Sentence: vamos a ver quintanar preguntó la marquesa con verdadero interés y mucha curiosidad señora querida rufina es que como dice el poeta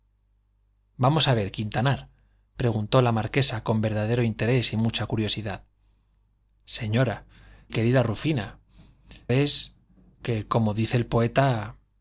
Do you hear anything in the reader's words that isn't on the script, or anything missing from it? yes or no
no